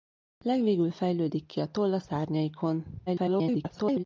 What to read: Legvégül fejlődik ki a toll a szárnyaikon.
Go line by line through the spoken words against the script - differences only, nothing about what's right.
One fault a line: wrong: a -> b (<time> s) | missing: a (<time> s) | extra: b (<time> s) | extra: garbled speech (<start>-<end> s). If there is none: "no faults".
extra: garbled speech (3.1-4.0 s)